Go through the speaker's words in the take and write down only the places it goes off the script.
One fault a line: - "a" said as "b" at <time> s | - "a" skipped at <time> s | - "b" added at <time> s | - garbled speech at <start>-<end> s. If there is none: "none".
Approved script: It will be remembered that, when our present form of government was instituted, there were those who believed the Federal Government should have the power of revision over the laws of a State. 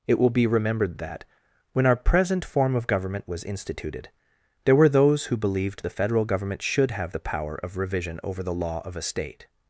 - "laws" said as "law" at 8.5 s